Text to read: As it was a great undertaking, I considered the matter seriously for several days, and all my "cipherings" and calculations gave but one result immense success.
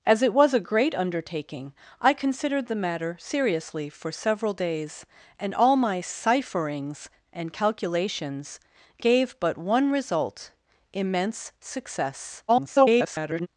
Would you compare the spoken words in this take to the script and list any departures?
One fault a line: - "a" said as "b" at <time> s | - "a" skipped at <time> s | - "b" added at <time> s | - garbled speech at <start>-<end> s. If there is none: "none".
- garbled speech at 12.5-13.5 s